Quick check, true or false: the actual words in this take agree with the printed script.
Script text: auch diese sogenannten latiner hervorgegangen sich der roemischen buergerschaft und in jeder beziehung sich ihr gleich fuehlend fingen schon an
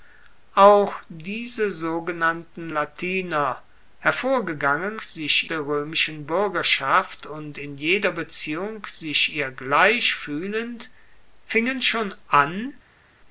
true